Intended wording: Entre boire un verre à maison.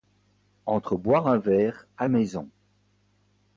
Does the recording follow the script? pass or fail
pass